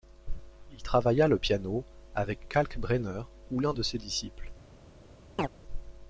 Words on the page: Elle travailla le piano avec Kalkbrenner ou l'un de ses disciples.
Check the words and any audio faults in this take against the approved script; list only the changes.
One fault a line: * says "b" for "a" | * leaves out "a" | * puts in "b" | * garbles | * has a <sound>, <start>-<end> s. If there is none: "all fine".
* says "Il" for "Elle"
* has a chirp, 5.4-5.5 s